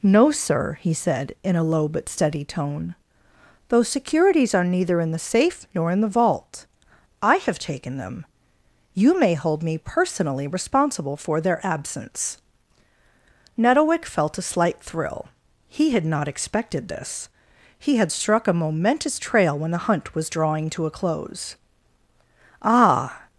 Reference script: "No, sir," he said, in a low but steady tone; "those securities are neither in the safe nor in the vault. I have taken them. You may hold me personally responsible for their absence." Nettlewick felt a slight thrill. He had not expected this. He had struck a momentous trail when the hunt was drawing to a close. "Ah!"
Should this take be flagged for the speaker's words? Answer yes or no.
no